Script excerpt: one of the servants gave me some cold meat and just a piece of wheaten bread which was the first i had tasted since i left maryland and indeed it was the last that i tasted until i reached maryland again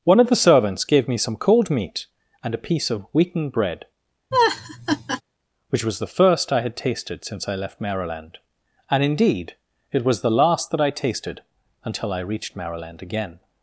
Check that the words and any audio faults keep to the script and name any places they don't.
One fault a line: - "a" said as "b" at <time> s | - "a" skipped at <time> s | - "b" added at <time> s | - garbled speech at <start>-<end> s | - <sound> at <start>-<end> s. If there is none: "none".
- "just" skipped at 2.5 s
- laugh at 4.3-5.2 s